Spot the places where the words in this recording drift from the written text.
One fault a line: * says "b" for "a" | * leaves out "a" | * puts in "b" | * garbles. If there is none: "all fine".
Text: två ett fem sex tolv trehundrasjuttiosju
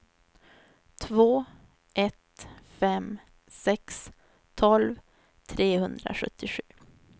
all fine